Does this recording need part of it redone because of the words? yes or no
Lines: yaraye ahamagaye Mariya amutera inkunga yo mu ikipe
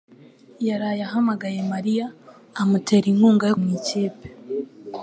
no